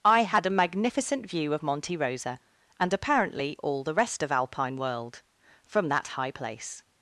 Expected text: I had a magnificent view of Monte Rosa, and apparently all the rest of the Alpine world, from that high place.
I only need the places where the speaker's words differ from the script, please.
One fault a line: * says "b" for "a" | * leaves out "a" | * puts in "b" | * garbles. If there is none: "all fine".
* leaves out "the"